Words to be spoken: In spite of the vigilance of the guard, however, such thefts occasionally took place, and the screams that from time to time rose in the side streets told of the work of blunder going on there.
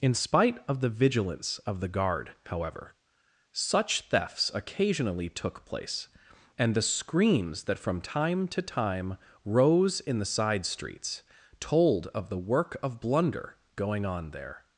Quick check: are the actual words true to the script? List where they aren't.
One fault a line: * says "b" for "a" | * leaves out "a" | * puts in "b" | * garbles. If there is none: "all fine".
all fine